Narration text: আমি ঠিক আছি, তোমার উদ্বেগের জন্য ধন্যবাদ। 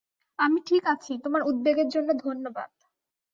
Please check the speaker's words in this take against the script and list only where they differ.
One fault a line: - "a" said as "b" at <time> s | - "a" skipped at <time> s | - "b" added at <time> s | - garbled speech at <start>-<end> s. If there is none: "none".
none